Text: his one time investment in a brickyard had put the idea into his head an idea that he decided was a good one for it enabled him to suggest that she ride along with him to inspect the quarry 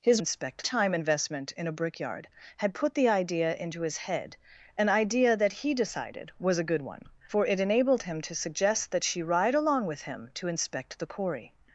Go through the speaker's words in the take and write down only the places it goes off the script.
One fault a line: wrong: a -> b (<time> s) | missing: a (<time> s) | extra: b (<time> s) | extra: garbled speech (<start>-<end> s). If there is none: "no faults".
wrong: one -> inspect (0.2 s)